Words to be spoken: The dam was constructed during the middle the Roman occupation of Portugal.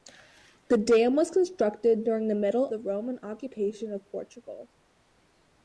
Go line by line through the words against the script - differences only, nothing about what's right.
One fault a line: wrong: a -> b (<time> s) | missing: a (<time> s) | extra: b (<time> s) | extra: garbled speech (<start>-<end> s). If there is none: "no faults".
no faults